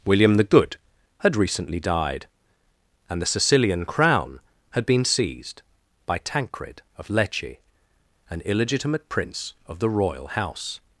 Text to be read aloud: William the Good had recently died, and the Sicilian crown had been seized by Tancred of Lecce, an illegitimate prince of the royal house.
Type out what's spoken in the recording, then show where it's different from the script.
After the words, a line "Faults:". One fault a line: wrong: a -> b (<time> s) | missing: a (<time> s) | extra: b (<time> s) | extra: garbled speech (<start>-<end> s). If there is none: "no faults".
William the Good had recently died, and the Sicilian crown had been seized by Tancred of Lecce, an illegitimate prince of the royal house.
Faults:
no faults